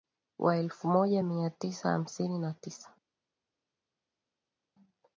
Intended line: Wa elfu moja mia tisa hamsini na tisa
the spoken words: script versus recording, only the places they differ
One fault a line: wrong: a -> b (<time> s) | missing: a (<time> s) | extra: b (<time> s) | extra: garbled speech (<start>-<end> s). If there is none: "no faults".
no faults